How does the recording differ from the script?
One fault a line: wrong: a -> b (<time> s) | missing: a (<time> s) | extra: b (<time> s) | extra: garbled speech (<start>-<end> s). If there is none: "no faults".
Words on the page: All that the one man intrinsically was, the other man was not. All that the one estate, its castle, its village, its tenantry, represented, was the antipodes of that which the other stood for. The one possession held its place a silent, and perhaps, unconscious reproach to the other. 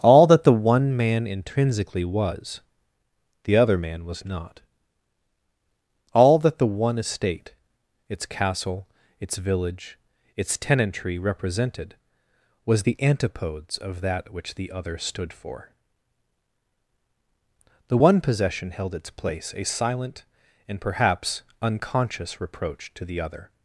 no faults